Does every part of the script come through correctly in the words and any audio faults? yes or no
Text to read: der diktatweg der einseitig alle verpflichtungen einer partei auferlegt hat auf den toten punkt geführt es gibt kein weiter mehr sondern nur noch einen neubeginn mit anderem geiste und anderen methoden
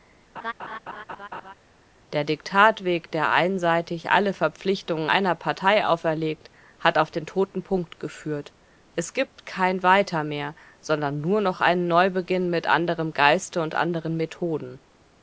no